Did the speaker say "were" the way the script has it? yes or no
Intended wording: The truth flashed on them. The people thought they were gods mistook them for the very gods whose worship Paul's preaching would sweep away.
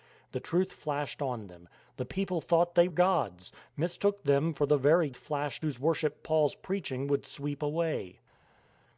no